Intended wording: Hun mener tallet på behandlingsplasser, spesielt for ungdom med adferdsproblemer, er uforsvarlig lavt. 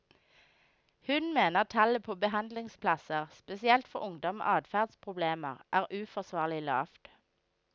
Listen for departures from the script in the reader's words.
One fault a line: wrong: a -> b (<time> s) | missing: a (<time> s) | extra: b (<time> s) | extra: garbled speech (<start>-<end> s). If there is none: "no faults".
no faults